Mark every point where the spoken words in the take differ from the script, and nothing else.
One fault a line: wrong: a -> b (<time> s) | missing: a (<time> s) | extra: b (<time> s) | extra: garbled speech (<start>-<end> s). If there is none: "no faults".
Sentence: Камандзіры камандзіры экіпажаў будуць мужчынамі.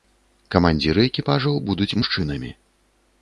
missing: камандзіры (1.0 s)